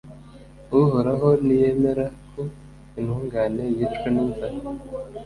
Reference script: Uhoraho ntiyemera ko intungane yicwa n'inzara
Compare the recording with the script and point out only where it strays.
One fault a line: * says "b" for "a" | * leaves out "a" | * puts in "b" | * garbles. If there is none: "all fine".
all fine